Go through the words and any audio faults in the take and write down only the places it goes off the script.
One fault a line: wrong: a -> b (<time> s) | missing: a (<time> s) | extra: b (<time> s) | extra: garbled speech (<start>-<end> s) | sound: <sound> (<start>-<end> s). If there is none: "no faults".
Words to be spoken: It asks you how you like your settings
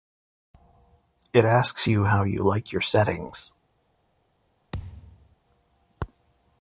sound: thud (4.7-5.4 s)